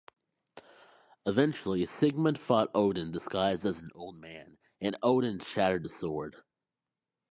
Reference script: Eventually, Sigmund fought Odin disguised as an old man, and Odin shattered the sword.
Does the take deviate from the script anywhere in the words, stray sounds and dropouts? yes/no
no